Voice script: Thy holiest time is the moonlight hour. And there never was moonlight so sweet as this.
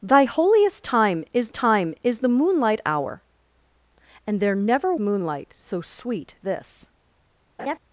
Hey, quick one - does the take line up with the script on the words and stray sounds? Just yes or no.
no